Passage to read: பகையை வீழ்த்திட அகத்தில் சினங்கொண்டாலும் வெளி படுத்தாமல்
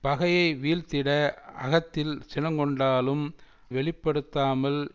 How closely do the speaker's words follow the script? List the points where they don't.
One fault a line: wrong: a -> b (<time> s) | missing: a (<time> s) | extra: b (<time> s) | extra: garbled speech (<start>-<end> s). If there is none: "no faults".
no faults